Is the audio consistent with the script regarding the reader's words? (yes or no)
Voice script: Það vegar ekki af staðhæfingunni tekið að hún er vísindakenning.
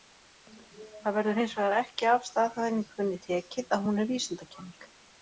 no